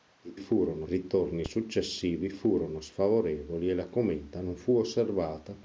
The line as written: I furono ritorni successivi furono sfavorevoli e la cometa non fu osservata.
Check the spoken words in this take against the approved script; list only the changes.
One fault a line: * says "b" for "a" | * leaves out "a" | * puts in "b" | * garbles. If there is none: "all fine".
all fine